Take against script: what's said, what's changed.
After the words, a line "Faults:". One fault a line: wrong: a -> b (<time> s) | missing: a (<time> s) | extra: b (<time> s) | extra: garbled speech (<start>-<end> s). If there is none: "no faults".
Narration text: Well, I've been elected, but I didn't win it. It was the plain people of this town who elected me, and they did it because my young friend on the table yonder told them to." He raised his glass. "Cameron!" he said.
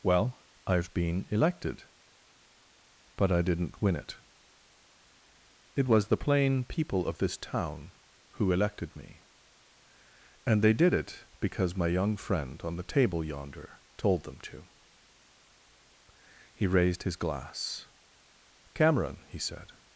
Well, I've been elected, but I didn't win it. It was the plain people of this town who elected me, and they did it because my young friend on the table yonder told them to." He raised his glass. "Cameron!" he said.
Faults:
no faults